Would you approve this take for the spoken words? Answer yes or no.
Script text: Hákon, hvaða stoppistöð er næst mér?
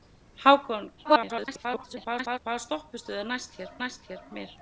no